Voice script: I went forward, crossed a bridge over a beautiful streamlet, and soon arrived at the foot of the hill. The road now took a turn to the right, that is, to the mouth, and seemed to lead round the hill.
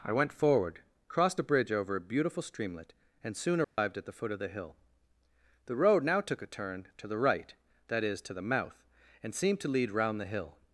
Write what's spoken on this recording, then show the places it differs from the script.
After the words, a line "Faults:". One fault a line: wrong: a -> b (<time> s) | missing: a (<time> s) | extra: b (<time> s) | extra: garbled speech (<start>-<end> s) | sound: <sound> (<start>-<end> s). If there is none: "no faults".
I went forward, crossed a bridge over a beautiful streamlet, and soon arrived at the foot of the hill. The road now took a turn to the right, that is, to the mouth, and seemed to lead round the hill.
Faults:
sound: dropout (3.6-3.8 s)